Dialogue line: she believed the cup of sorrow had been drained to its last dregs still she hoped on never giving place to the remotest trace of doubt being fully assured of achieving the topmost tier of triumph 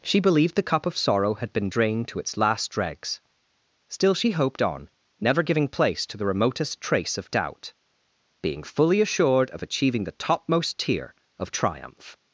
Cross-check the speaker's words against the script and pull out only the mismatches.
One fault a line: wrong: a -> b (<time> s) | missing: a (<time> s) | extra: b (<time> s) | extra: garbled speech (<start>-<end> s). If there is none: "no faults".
no faults